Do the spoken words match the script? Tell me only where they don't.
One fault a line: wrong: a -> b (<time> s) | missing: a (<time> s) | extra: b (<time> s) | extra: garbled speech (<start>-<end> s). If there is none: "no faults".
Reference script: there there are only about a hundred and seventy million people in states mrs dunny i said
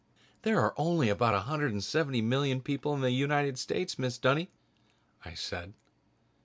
missing: there (0.6 s)
extra: the united (3.0 s)